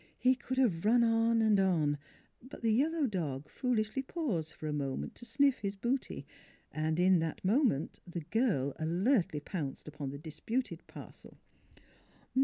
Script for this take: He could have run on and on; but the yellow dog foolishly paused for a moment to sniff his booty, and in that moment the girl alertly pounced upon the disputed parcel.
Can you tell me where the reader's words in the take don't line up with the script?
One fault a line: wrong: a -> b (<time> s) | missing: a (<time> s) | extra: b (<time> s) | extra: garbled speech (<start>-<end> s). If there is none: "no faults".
no faults